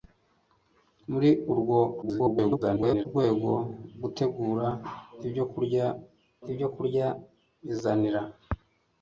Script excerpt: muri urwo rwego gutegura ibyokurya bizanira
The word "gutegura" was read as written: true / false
true